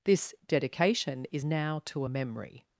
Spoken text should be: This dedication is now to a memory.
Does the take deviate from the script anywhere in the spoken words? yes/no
no